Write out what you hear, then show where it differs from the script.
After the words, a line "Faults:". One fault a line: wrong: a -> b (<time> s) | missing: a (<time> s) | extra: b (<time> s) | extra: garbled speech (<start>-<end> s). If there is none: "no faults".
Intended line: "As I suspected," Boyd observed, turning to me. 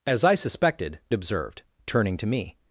"As I suspected," Observed, turning to me.
Faults:
missing: Boyd (1.0 s)